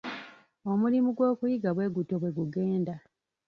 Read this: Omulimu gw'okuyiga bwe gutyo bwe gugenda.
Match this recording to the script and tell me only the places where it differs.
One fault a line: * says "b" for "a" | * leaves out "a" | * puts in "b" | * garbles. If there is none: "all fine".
all fine